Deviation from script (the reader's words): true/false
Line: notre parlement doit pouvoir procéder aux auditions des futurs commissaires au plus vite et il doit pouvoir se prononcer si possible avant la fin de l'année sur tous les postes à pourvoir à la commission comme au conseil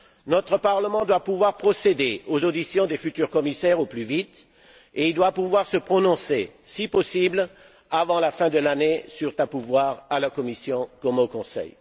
true